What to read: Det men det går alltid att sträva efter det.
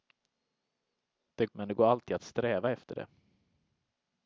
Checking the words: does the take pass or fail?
pass